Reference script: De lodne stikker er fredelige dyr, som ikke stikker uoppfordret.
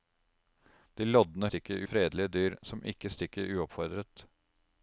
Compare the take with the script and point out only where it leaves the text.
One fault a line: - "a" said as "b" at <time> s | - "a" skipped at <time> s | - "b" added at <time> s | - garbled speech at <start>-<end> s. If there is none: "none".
none